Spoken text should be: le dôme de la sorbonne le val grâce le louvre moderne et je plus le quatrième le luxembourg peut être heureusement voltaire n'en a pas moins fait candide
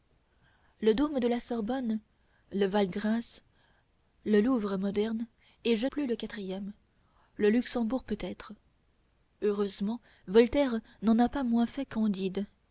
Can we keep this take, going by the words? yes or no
yes